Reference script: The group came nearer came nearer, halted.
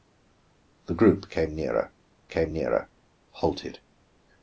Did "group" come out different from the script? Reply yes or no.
no